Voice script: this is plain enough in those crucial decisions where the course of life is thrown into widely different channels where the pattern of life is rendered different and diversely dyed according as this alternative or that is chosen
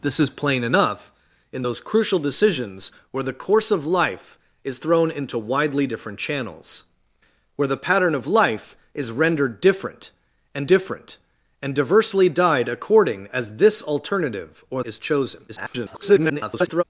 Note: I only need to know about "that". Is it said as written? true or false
false